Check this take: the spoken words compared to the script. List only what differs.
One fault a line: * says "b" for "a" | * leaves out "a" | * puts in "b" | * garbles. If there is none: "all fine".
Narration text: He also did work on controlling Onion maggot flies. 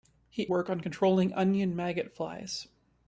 * leaves out "also did"